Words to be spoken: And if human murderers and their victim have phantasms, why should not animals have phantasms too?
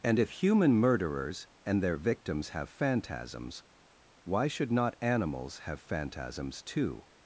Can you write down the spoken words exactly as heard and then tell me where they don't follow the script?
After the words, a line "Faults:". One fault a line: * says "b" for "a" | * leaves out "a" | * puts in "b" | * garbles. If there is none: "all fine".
And if human murderers and their victims have phantasms, why should not animals have phantasms too?
Faults:
* says "victims" for "victim"